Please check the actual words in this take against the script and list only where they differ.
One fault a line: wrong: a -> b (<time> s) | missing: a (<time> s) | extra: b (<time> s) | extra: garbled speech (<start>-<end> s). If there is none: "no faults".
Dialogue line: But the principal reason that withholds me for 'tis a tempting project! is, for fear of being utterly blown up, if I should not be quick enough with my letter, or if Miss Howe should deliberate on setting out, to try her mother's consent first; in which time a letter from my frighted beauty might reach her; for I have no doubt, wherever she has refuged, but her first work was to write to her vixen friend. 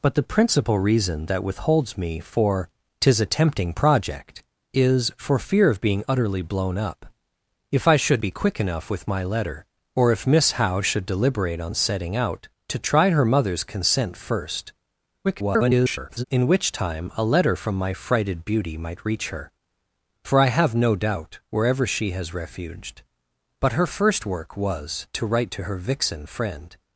missing: not (8.2 s)
extra: garbled speech (15.2-16.2 s)